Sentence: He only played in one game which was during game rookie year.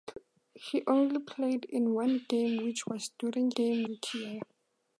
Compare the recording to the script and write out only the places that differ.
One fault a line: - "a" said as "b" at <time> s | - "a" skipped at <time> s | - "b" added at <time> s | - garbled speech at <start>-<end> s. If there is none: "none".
none